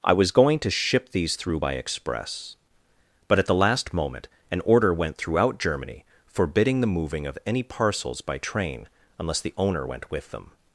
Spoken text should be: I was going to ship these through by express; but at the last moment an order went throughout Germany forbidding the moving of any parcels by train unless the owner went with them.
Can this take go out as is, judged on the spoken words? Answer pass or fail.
pass